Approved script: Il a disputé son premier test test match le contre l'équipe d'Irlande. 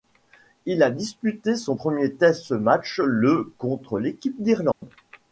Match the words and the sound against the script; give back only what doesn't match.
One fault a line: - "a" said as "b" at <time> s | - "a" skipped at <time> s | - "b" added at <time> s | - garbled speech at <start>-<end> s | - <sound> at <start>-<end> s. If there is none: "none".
- "test" skipped at 2.5 s
- dropout at 4.7-4.8 s